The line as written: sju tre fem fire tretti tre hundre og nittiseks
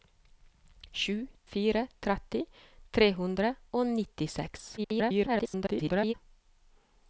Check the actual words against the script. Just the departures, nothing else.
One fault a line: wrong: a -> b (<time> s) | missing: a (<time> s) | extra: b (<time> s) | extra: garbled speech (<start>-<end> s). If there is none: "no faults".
missing: tre fem (1.1 s)
extra: garbled speech (4.8-6.1 s)